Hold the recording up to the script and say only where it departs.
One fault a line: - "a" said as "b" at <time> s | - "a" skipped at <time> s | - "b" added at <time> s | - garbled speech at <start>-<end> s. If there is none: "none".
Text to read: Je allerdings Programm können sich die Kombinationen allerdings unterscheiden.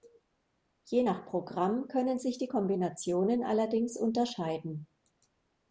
- "allerdings" said as "nach" at 1.0 s